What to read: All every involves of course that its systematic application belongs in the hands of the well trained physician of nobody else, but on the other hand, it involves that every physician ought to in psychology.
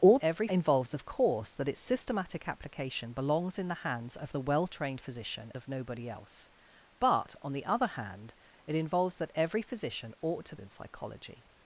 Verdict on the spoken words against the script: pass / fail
pass